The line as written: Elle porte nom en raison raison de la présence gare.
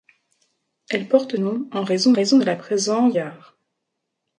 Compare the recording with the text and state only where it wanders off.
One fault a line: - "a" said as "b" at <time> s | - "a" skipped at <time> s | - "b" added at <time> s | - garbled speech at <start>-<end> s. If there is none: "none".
none